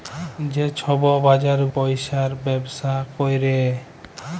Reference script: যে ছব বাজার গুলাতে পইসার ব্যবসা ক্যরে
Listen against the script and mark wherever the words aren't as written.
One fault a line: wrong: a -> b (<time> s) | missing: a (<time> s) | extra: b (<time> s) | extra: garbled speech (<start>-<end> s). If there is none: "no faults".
missing: গুলাতে (1.6 s)